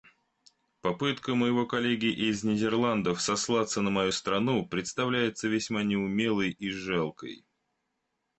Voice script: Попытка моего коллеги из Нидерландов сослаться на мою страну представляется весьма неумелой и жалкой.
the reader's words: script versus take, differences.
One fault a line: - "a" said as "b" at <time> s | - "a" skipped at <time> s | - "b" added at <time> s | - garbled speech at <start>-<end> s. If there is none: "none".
none